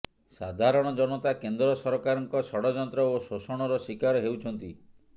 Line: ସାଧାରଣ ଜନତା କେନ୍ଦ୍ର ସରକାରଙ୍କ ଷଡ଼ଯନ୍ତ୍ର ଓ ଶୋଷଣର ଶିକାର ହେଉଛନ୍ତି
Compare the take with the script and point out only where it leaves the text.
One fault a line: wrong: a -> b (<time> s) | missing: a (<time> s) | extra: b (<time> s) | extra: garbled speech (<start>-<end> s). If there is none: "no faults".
no faults